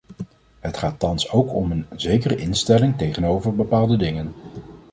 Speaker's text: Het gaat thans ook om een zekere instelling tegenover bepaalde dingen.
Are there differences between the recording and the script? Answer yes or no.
no